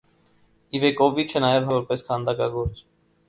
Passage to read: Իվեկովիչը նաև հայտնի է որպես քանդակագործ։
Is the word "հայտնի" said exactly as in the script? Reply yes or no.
no